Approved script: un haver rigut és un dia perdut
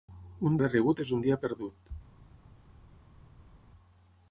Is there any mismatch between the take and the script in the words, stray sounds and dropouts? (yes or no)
no